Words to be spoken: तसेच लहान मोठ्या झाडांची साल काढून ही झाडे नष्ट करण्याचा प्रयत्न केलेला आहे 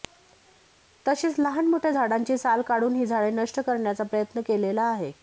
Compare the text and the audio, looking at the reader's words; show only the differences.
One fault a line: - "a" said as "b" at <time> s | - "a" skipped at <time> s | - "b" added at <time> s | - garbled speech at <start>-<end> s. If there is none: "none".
none